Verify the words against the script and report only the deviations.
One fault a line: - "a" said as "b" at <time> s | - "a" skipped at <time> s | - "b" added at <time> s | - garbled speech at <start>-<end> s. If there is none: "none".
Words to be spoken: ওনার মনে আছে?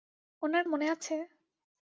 none